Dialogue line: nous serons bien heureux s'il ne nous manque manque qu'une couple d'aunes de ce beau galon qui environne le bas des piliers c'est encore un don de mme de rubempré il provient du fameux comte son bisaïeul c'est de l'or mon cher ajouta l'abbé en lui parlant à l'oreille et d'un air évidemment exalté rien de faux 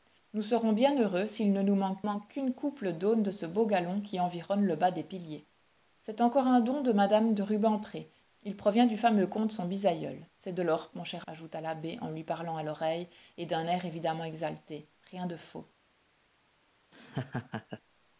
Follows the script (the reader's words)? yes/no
yes